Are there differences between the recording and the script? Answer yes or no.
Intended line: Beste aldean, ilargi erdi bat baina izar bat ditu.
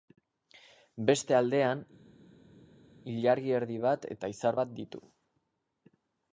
yes